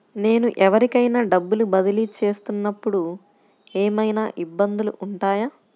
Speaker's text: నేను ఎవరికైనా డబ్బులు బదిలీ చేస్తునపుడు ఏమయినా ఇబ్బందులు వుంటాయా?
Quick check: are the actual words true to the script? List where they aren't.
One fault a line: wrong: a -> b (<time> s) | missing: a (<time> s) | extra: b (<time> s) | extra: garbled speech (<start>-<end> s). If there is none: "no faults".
no faults